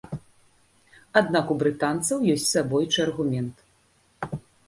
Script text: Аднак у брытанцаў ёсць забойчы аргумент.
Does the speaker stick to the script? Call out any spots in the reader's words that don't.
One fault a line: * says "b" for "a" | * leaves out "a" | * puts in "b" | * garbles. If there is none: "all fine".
all fine